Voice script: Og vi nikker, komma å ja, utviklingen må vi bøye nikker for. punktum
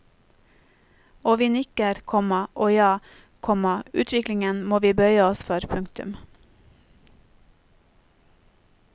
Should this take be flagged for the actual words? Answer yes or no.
yes